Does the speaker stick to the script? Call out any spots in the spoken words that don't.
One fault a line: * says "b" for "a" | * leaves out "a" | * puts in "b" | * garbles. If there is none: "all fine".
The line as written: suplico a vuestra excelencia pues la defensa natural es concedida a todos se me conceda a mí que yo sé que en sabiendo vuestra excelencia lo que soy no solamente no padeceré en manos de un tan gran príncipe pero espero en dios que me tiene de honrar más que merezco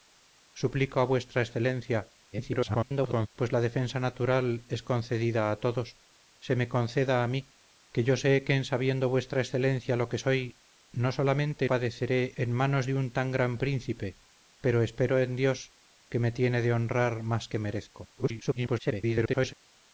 * garbles
* leaves out "no"
* garbles